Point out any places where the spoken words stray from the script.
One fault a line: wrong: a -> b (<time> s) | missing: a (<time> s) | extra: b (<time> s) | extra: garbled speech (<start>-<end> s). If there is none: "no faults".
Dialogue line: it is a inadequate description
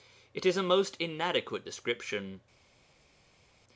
extra: most (0.6 s)